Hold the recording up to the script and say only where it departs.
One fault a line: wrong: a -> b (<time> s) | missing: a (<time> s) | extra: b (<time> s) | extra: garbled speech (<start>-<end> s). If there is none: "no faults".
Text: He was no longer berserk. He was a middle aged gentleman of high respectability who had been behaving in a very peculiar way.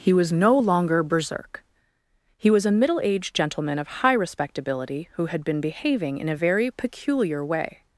no faults